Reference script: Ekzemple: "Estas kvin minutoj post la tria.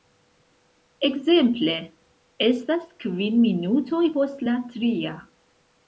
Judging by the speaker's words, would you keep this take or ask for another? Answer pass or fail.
pass